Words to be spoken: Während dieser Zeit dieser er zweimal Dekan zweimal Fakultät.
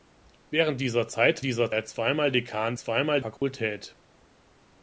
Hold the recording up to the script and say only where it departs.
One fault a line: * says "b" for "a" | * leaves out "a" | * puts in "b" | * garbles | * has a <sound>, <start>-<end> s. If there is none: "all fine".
* has a dropout, 3.4-3.4 s